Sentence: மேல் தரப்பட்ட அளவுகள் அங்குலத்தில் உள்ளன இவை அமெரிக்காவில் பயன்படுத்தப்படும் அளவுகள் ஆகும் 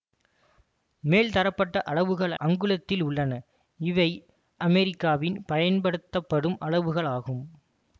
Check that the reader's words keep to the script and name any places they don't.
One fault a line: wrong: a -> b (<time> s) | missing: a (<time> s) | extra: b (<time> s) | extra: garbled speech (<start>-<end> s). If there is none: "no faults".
no faults